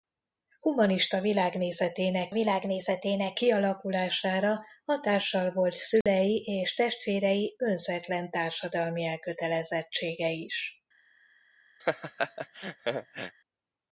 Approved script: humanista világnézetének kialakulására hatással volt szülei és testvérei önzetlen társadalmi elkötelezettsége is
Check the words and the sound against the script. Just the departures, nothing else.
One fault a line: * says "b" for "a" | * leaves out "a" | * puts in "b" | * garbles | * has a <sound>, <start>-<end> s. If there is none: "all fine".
* puts in "világnézetének"
* has a dropout, 6.0-6.1 s
* has a laugh, 11.8-13.4 s